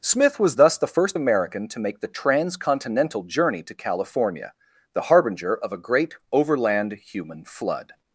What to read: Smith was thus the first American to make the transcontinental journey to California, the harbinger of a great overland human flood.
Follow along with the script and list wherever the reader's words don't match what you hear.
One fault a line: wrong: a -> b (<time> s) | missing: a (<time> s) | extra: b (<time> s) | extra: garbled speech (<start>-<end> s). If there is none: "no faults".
no faults